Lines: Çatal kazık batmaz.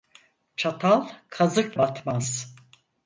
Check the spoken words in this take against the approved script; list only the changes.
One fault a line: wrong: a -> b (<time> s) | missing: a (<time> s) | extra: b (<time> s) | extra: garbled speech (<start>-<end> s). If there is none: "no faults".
no faults